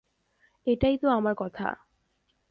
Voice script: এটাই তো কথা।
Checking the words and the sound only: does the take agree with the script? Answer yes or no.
no